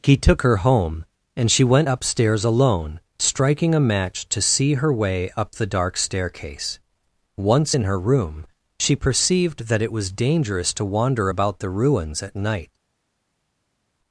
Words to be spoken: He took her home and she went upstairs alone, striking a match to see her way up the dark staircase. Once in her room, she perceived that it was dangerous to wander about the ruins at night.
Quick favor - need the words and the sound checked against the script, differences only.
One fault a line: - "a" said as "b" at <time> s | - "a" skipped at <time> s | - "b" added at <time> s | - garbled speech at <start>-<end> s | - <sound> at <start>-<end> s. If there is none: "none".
none